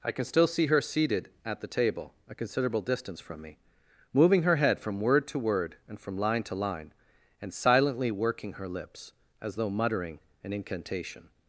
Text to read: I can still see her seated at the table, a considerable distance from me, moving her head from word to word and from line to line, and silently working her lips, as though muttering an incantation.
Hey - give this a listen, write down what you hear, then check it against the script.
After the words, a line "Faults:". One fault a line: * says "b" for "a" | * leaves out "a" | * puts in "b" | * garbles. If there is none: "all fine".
I can still see her seated at the table, a considerable distance from me, moving her head from word to word and from line to line, and silently working her lips, as though muttering an incantation.
Faults:
all fine